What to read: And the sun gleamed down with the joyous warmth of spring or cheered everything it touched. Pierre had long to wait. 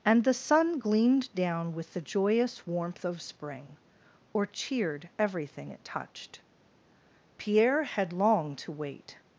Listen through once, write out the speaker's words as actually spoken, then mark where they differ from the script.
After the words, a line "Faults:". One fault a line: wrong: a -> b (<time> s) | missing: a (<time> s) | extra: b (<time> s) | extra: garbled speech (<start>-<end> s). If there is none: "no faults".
And the sun gleamed down with the joyous warmth of spring or cheered everything it touched. Pierre had long to wait.
Faults:
no faults